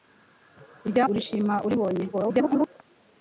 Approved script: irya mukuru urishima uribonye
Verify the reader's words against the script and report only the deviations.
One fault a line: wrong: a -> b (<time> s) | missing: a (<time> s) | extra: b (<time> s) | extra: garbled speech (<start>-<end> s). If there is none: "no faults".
missing: mukuru (1.1 s)
extra: garbled speech (2.1-2.7 s)